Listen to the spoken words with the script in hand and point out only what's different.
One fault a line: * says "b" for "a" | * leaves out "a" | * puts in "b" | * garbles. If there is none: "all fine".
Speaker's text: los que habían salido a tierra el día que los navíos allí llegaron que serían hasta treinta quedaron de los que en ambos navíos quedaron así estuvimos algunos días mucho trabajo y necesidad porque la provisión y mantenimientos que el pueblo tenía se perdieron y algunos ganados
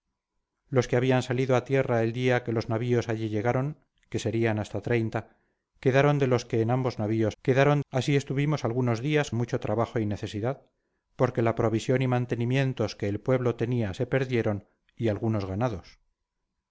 all fine